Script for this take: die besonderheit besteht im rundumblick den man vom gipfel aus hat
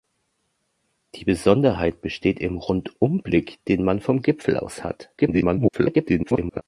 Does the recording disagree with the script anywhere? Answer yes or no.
yes